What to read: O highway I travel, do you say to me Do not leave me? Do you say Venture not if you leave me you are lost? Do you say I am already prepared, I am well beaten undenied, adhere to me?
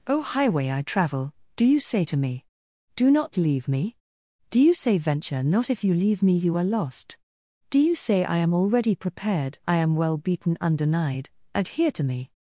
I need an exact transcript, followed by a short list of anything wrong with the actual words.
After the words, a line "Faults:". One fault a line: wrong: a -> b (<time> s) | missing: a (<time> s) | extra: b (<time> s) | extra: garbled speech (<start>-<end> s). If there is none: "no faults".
O highway I travel, do you say to me Do not leave me? Do you say Venture not if you leave me you are lost? Do you say I am already prepared, I am well beaten undenied, adhere to me?
Faults:
no faults